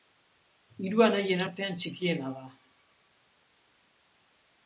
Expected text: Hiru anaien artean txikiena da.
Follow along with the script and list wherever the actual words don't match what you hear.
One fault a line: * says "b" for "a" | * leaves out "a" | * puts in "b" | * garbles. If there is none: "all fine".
all fine